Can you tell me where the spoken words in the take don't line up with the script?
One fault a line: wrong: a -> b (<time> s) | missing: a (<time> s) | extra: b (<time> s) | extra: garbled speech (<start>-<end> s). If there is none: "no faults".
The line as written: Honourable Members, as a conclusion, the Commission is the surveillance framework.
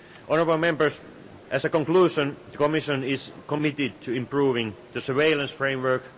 extra: committed to improving (3.5 s)